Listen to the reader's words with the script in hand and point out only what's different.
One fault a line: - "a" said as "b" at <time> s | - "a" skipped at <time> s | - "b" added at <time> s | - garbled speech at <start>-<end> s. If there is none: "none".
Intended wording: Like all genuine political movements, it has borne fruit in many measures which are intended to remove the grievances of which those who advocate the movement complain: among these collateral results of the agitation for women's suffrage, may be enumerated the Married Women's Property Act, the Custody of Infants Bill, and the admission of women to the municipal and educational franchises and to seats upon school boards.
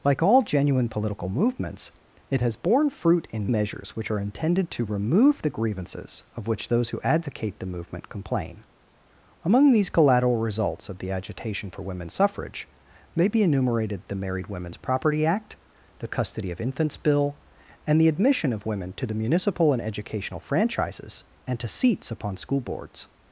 - "many" skipped at 3.5 s